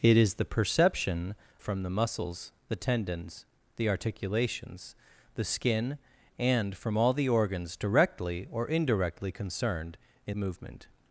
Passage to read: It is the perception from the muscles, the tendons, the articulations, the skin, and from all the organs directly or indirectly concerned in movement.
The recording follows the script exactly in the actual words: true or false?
true